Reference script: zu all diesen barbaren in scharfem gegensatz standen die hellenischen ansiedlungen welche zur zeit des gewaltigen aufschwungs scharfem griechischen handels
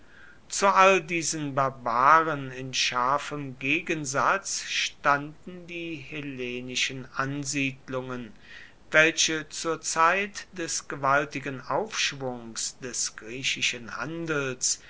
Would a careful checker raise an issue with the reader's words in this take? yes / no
yes